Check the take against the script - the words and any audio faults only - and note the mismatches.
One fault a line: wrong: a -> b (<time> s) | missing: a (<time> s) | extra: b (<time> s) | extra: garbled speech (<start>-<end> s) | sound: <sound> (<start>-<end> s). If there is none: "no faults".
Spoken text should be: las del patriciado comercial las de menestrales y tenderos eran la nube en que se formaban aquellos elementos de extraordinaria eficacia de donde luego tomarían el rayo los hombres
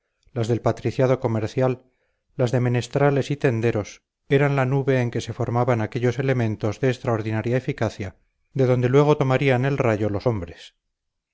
no faults